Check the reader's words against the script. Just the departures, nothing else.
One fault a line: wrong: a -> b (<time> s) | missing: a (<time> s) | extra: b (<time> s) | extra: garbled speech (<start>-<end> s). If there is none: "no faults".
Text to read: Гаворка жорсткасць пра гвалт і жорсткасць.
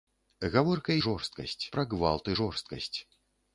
no faults